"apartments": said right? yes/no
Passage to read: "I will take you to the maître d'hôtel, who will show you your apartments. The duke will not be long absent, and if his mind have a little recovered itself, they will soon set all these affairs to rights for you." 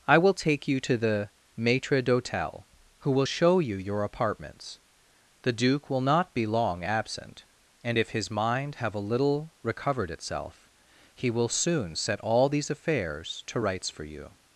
yes